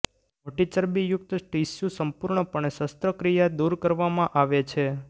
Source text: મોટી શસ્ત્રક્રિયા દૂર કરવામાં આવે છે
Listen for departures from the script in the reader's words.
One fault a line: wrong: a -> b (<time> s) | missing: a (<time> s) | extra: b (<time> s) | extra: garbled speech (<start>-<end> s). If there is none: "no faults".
extra: ચરબીયુક્ત ટીશ્યુ સંપૂર્ણપણે (0.7 s)